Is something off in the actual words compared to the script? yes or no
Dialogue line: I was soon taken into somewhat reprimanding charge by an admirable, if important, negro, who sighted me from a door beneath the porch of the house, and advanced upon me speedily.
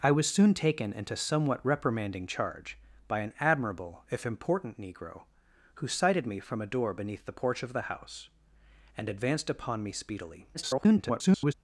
yes